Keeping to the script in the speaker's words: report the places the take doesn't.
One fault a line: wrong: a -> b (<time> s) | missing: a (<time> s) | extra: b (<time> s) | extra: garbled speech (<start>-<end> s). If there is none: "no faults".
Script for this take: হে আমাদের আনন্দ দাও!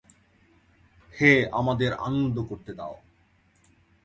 extra: করতে (2.5 s)